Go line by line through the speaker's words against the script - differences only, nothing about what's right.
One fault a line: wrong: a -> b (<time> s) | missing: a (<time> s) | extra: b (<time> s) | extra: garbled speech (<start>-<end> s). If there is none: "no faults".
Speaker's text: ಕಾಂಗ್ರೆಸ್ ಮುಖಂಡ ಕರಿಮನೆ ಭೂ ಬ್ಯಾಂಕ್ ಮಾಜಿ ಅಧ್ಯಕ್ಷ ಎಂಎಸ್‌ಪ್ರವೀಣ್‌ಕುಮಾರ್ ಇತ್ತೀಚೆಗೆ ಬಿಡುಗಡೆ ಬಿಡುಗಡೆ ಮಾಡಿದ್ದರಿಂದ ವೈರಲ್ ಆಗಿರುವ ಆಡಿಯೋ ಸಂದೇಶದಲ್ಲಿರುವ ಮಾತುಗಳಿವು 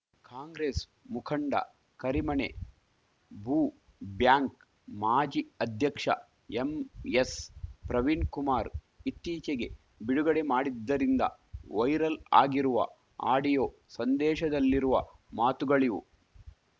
missing: ಬಿಡುಗಡೆ (10.5 s)